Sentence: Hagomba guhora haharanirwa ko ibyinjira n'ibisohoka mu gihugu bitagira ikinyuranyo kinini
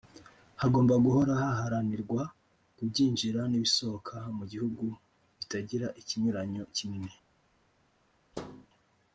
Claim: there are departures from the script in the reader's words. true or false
false